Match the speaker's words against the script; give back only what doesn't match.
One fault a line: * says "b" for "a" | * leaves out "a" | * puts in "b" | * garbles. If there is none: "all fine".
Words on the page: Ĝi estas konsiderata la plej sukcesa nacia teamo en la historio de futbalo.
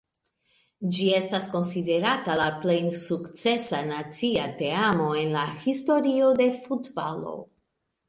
all fine